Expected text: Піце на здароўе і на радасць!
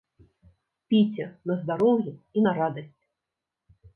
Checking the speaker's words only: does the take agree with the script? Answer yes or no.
yes